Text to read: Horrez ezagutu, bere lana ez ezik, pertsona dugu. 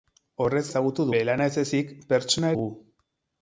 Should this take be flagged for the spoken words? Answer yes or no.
no